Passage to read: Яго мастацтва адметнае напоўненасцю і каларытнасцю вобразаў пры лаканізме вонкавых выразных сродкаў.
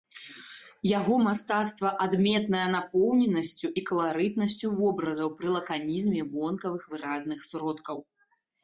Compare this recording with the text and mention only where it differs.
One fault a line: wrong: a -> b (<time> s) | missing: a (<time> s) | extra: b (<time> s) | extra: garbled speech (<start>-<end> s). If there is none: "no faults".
no faults